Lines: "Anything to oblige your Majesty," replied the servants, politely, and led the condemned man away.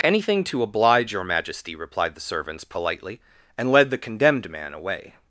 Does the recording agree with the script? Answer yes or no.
yes